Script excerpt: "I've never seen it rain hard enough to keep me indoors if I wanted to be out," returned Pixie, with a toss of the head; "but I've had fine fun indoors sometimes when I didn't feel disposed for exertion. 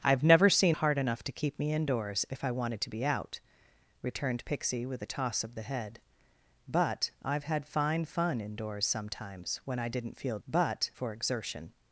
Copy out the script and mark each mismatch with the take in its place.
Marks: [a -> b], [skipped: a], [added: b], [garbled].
"I've never seen [skipped: it rain] hard enough to keep me indoors if I wanted to be out," returned Pixie, with a toss of the head; "but I've had fine fun indoors sometimes when I didn't feel [disposed -> but] for exertion.